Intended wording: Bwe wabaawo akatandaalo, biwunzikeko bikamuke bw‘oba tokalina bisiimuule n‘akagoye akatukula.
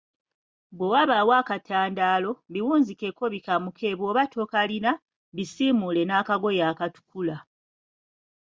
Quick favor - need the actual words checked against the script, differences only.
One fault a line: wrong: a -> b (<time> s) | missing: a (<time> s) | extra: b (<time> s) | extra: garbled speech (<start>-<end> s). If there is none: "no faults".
no faults